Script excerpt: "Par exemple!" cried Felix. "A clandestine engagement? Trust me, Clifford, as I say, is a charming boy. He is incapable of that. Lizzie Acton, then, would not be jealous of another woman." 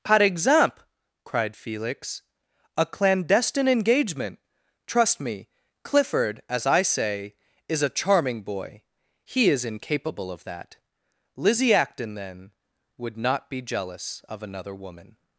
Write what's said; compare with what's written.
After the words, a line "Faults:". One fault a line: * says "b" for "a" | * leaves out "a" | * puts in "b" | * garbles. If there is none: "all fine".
"Par exemple!" cried Felix. "A clandestine engagement? Trust me, Clifford, as I say, is a charming boy. He is incapable of that. Lizzie Acton, then, would not be jealous of another woman."
Faults:
all fine